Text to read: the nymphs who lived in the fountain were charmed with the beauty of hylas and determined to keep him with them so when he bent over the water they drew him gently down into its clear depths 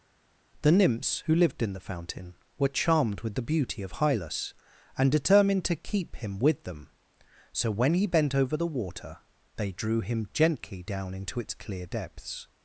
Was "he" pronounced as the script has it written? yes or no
yes